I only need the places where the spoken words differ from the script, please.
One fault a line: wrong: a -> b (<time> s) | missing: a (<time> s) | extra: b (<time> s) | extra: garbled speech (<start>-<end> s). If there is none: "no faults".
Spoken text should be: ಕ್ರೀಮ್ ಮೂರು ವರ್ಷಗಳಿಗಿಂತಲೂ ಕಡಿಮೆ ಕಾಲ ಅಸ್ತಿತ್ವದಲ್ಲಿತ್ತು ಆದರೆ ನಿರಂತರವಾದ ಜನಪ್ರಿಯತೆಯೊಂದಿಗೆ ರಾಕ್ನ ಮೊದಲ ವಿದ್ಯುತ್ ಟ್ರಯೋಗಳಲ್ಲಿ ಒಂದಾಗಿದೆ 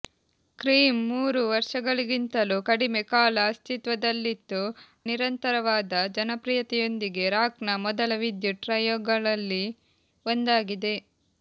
missing: ಆದರೆ (4.6 s)